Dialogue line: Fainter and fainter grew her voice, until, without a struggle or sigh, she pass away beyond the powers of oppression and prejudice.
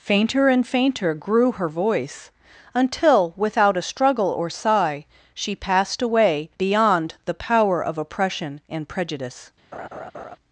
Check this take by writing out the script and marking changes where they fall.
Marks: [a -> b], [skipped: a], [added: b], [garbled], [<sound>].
Fainter and fainter grew her voice, until, without a struggle or sigh, she [pass -> passed] away beyond the [powers -> power] of oppression and prejudice. [laugh]